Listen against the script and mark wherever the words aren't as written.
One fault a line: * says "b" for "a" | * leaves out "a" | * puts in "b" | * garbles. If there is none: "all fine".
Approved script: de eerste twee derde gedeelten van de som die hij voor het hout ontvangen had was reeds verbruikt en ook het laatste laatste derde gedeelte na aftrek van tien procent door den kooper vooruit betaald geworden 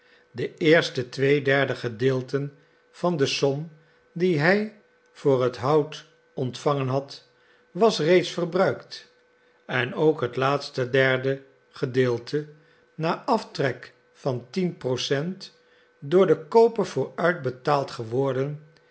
* leaves out "laatste"